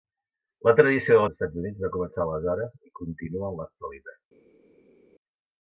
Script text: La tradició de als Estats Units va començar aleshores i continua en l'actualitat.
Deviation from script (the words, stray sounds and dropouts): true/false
false